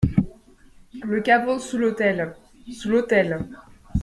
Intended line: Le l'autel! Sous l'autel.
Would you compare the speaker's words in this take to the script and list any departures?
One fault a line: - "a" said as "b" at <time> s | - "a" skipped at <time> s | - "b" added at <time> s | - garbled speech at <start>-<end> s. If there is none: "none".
- "caveau sous" added at 1.2 s